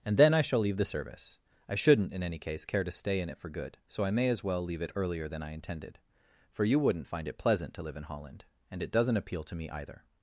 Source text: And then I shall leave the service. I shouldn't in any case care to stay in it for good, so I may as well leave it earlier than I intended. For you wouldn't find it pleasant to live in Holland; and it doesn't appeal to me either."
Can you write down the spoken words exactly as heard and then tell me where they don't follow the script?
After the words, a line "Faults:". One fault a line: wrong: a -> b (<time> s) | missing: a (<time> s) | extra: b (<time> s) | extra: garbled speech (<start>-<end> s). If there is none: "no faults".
And then I shall leave the service. I shouldn't in any case care to stay in it for good, so I may as well leave it earlier than I intended. For you wouldn't find it pleasant to live in Holland; and it doesn't appeal to me either."
Faults:
no faults